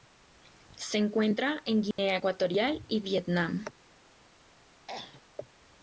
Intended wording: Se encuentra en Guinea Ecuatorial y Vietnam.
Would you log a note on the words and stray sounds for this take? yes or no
yes